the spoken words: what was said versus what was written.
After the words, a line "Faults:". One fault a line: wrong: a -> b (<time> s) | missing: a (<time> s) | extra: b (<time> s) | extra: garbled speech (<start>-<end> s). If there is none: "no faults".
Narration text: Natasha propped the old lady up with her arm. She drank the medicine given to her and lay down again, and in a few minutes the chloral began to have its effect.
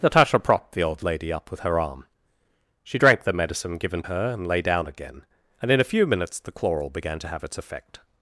Natasha propped the old lady up with her arm. She drank the medicine given her and lay down again, and in a few minutes the chloral began to have its effect.
Faults:
missing: to (4.0 s)